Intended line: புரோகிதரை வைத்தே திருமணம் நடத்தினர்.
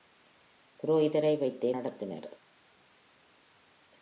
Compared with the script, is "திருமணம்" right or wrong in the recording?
wrong